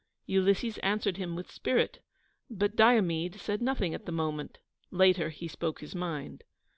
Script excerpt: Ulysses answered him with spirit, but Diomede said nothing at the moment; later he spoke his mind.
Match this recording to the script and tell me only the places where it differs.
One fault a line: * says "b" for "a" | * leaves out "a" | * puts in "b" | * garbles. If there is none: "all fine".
all fine